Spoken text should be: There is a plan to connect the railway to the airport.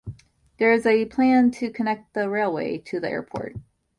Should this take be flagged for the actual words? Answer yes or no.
no